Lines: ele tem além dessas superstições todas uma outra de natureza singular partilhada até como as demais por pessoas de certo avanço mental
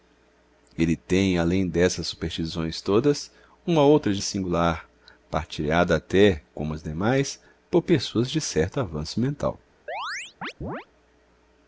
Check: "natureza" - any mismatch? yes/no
yes